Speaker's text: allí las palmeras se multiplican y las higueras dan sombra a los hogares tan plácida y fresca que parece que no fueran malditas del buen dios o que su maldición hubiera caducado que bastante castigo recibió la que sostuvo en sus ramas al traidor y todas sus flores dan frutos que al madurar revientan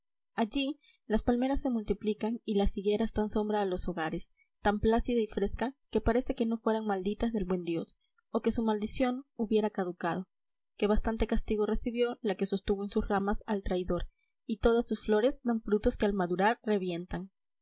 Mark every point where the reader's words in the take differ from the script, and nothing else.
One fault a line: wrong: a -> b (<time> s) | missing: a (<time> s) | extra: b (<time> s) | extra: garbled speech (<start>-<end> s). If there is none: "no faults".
no faults